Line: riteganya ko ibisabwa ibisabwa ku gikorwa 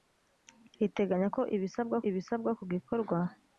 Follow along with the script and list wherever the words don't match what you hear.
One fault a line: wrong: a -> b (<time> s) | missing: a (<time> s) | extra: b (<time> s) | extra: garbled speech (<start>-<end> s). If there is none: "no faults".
no faults